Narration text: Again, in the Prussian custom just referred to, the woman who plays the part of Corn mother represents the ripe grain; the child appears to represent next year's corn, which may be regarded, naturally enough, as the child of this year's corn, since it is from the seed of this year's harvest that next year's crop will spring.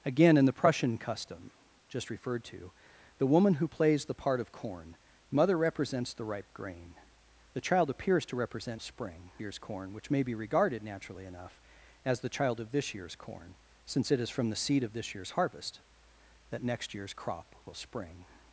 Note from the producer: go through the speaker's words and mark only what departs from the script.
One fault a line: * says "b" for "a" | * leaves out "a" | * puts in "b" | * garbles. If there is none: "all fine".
* says "spring" for "next"